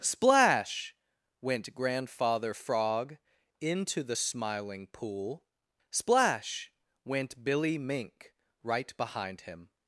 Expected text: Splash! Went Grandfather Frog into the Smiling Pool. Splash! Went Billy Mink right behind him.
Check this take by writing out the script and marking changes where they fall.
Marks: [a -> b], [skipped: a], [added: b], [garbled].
Splash! Went Grandfather Frog into the Smiling Pool. Splash! Went Billy Mink right behind him.